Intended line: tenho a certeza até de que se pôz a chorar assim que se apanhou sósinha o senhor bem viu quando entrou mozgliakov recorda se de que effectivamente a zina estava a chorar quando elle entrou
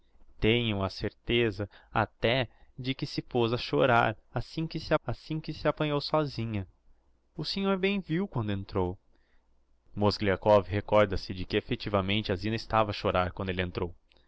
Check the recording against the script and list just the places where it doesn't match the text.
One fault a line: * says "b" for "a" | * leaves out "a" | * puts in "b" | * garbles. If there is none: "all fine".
* puts in "assim que se"